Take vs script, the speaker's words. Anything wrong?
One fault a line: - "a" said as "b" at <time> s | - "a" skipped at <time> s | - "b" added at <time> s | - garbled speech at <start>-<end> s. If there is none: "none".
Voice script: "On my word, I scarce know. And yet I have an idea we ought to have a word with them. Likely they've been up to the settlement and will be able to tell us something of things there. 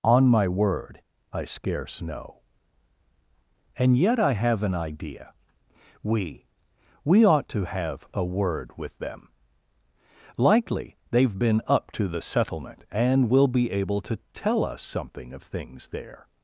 - "we" added at 7.0 s